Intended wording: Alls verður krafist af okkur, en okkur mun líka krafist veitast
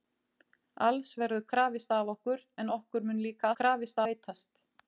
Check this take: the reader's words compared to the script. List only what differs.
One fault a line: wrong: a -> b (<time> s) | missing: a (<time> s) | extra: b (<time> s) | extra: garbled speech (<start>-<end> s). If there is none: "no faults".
no faults